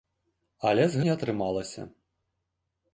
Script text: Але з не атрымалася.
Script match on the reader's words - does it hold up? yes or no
yes